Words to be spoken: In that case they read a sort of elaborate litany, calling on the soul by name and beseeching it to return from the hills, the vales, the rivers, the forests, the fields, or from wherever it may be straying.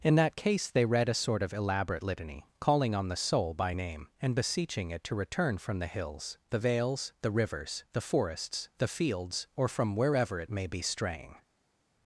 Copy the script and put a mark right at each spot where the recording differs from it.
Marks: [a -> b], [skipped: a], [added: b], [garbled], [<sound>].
In that case they read a sort of elaborate litany, calling on the soul by name and beseeching it to return from the hills, the vales, the rivers, the forests, the fields, or from wherever it may be straying.